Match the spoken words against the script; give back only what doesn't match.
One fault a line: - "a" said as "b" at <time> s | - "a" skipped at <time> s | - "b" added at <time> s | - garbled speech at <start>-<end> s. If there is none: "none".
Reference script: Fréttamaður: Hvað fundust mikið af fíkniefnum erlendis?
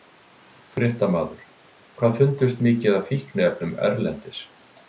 none